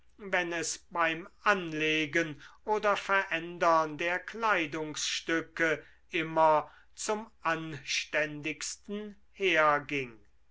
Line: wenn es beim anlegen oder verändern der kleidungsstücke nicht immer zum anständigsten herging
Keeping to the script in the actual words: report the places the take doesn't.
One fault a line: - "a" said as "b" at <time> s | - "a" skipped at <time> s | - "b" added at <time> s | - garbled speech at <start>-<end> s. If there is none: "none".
- "nicht" skipped at 5.8 s